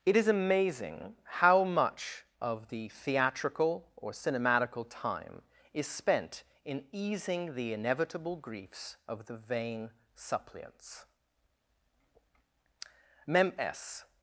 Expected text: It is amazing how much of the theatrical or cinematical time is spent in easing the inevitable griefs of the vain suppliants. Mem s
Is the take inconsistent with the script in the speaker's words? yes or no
no